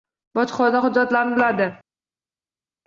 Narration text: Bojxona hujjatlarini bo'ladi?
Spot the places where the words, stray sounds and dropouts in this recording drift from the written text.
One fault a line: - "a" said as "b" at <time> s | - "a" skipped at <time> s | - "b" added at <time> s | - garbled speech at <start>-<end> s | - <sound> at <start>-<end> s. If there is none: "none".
none